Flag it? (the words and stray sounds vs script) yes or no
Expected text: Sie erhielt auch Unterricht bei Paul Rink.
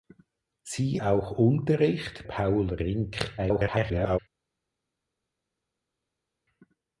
yes